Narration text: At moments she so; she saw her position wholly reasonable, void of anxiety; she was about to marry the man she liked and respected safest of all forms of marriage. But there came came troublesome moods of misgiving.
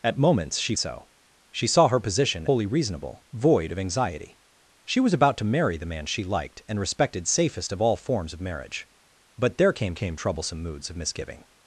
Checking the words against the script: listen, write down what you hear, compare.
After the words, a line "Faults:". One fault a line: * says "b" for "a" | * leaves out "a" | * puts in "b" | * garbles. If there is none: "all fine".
At moments she so; she saw her position wholly reasonable, void of anxiety; she was about to marry the man she liked and respected safest of all forms of marriage. But there came came troublesome moods of misgiving.
Faults:
all fine